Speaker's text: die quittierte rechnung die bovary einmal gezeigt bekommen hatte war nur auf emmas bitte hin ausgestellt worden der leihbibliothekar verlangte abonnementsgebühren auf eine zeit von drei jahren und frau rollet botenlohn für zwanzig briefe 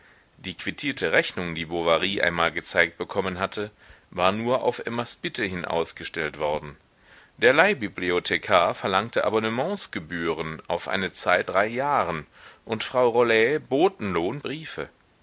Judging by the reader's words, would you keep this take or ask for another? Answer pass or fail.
fail